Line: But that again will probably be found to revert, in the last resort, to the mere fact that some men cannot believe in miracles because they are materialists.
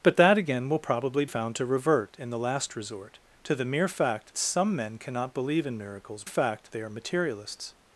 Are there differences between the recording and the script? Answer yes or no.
yes